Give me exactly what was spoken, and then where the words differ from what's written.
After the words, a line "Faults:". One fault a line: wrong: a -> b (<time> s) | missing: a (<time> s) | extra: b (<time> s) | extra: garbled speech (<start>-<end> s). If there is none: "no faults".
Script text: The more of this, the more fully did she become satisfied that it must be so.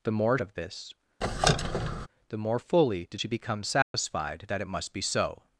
The more of this, the more fully did she become satisfied that it must be so.
Faults:
no faults